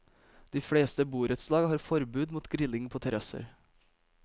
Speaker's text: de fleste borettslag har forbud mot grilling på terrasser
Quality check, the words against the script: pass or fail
pass